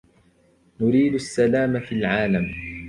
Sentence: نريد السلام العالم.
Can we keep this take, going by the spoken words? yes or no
no